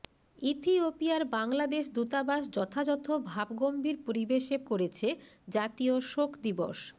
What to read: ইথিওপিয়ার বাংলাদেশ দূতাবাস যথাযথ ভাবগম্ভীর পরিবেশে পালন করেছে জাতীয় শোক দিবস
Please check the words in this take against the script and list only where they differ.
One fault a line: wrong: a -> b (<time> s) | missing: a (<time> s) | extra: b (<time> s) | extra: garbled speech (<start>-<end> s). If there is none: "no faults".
missing: পালন (4.6 s)